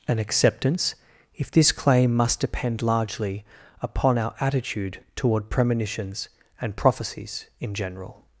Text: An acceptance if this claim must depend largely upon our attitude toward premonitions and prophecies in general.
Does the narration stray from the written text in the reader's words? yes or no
no